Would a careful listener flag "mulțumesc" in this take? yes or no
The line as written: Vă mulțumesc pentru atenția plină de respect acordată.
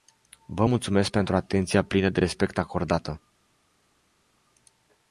no